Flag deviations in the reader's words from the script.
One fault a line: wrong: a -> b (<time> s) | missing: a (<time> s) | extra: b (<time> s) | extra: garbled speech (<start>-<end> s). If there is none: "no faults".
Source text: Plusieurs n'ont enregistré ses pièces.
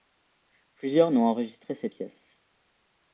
no faults